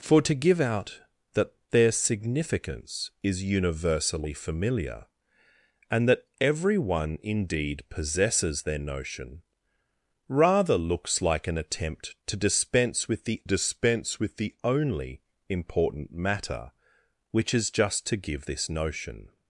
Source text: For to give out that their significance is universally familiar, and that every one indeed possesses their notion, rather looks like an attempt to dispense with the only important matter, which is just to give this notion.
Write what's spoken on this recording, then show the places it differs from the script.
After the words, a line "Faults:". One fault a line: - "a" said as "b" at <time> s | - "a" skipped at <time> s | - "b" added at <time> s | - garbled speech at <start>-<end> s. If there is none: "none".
For to give out that their significance is universally familiar, and that every one indeed possesses their notion, rather looks like an attempt to dispense with the dispense with the only important matter, which is just to give this notion.
Faults:
- "dispense with the" added at 13.4 s